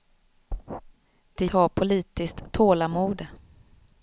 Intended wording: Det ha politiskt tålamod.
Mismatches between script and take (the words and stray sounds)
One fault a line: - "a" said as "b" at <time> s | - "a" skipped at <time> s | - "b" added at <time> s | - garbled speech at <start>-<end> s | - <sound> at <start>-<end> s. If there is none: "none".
none